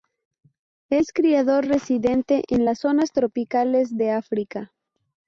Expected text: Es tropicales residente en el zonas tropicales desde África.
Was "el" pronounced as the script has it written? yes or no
no